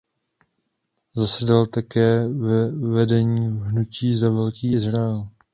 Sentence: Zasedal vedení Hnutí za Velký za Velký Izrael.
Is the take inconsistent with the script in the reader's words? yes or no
yes